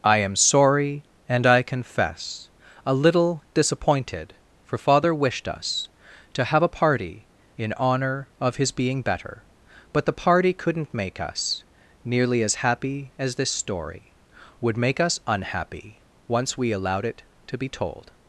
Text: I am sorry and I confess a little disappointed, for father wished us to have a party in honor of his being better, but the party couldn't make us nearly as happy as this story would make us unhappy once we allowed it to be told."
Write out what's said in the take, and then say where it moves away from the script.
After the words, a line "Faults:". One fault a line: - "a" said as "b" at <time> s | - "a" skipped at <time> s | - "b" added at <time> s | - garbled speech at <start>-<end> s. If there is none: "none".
I am sorry and I confess a little disappointed, for father wished us to have a party in honor of his being better, but the party couldn't make us nearly as happy as this story would make us unhappy once we allowed it to be told."
Faults:
none